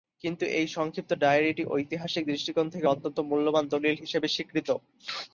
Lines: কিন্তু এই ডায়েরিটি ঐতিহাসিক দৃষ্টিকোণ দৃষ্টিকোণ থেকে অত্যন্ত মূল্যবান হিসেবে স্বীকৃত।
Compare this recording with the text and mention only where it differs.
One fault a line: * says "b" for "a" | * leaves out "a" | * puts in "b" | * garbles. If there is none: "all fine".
* puts in "সংক্ষিপ্ত"
* leaves out "দৃষ্টিকোণ"
* puts in "দলিল"